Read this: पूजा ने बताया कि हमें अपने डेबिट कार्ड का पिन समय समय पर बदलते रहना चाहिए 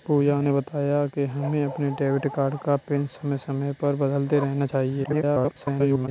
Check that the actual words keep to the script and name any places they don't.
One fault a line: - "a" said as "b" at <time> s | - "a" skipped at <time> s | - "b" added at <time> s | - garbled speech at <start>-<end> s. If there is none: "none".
- garbled speech at 5.0-6.1 s